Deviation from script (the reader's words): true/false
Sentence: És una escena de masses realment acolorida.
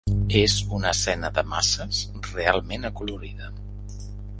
false